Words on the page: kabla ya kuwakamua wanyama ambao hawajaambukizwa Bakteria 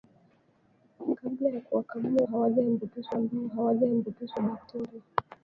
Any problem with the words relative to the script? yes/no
yes